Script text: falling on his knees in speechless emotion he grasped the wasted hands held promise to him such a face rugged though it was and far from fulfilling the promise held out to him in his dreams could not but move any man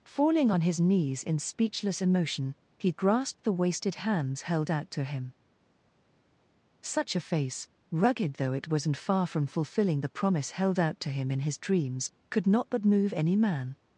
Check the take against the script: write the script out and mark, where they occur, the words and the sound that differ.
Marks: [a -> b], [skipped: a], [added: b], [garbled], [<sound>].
falling on his knees in speechless emotion he grasped the wasted hands held [promise -> out] to him such a face rugged though it was and far from fulfilling the promise held out to him in his dreams could not but move any man